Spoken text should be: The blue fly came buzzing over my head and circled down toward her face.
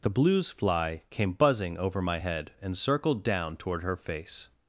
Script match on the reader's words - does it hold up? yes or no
no